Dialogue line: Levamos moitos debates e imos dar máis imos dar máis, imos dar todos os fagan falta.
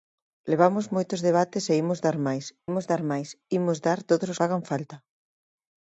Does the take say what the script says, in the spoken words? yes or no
yes